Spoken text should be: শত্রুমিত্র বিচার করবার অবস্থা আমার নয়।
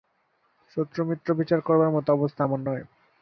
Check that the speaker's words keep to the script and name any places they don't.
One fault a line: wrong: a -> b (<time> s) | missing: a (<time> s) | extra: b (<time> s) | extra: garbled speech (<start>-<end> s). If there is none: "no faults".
extra: মতো (1.9 s)